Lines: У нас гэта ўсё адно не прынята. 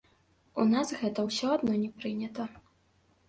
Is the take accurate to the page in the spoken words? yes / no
yes